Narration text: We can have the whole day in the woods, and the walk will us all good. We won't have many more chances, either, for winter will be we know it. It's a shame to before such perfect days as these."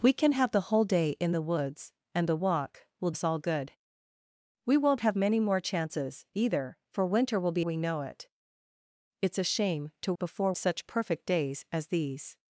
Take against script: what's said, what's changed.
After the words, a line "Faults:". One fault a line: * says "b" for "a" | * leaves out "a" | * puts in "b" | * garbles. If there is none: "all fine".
We can have the whole day in the woods, and the walk will us all good. We won't have many more chances, either, for winter will be we know it. It's a shame to before such perfect days as these."
Faults:
all fine